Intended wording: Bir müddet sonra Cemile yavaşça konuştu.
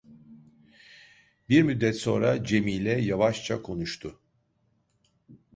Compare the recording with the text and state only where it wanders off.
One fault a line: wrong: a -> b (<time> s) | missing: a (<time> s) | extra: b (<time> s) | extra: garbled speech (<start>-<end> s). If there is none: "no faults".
no faults